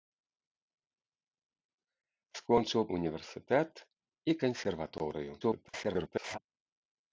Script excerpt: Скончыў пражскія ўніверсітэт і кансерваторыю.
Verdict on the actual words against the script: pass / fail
fail